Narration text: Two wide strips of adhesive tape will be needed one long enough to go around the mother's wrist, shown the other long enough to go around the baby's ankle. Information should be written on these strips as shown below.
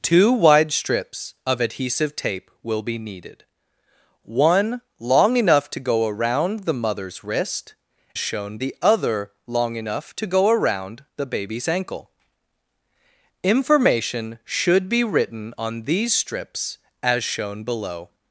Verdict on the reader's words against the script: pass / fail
pass